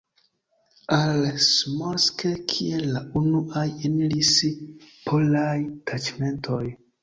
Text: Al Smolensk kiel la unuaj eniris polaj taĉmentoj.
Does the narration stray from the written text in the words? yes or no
no